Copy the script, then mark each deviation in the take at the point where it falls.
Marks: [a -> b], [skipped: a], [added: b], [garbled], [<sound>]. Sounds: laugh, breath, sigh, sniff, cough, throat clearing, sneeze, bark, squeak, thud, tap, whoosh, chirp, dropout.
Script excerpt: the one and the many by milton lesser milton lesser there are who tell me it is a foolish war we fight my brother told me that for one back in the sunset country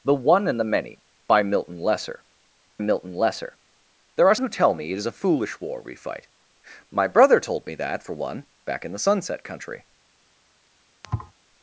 the one and the many by milton lesser milton lesser there are who tell me it is a foolish war we fight my brother told me that for one back in the sunset country [thud]